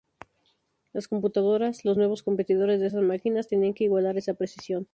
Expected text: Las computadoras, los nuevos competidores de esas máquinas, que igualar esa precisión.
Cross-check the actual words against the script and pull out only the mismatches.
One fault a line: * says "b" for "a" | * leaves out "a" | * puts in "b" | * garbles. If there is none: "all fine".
* puts in "tenían"